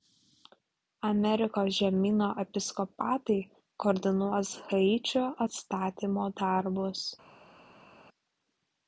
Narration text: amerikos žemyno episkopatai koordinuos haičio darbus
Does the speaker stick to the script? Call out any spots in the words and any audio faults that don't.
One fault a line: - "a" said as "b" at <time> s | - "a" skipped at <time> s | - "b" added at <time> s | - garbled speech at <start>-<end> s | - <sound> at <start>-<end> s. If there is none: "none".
- "atstatymo" added at 5.5 s